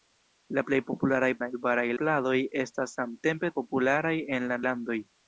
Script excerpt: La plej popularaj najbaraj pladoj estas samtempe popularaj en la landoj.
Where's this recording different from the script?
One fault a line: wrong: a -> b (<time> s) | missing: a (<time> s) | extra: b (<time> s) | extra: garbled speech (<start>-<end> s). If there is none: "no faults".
no faults